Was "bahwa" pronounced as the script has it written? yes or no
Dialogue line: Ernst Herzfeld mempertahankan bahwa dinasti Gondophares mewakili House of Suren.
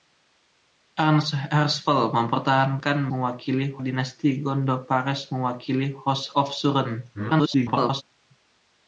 no